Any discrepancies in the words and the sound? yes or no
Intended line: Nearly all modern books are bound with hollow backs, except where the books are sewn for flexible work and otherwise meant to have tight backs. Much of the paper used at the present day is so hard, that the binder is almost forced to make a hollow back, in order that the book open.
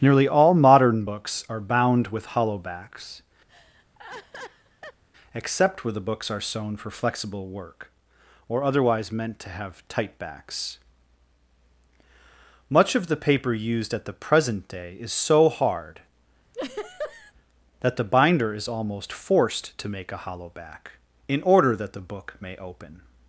yes